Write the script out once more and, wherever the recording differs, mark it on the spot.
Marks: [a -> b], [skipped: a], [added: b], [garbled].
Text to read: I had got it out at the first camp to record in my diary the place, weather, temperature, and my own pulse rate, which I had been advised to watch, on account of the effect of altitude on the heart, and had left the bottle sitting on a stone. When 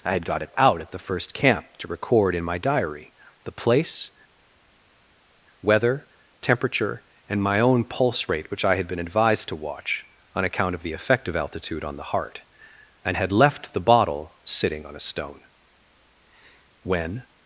I had got it out at the first camp to record in my diary the place, weather, temperature, and my own pulse rate, which I had been advised to watch, on account of the effect of altitude on the heart, and had left the bottle sitting on a stone. When